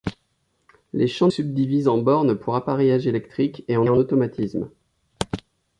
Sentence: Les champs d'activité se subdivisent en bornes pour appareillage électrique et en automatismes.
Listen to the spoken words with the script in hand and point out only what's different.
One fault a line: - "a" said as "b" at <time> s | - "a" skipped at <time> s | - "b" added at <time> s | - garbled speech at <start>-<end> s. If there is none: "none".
- "d'activité se" skipped at 1.3 s
- "en" added at 3.9 s